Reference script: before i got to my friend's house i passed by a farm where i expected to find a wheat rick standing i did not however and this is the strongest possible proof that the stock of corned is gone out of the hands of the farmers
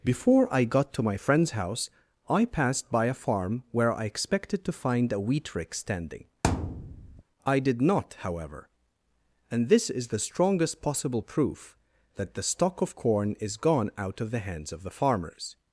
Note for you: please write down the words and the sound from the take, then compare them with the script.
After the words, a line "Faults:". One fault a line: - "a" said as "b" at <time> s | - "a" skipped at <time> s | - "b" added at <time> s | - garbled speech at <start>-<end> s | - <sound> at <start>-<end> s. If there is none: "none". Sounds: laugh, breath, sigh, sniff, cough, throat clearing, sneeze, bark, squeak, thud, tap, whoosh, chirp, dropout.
before i got to my friend's house i passed by a farm where i expected to find a wheat rick standing i did not however and this is the strongest possible proof that the stock of corn is gone out of the hands of the farmers
Faults:
- thud at 6.4-7.2 s
- "corned" said as "corn" at 12.9 s